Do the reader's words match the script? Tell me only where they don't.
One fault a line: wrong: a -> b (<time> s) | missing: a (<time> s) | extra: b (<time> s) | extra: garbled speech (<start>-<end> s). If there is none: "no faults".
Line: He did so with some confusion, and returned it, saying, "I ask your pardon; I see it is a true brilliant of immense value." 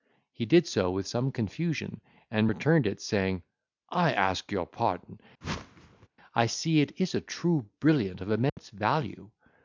no faults